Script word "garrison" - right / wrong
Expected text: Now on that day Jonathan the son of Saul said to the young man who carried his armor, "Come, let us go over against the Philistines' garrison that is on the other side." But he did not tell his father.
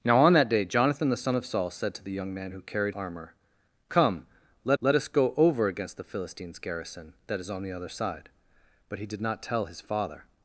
right